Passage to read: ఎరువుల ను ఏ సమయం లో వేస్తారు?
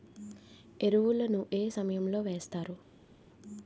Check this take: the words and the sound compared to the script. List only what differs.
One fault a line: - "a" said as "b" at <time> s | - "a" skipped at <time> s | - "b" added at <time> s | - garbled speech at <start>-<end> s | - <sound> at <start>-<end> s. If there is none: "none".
none